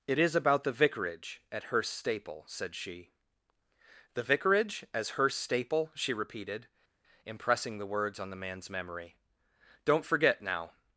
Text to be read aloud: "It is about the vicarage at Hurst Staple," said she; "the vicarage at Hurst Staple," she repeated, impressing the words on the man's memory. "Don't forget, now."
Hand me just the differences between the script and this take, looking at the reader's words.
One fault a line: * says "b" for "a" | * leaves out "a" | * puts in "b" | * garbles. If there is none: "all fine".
* says "as" for "at"